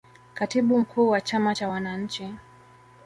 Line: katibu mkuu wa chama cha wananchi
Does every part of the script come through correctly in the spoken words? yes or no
yes